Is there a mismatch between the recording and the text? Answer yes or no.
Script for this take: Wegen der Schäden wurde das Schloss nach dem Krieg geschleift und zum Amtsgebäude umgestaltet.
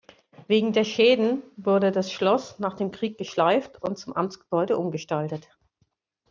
no